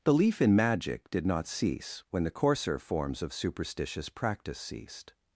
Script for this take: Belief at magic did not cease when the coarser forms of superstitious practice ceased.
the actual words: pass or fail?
fail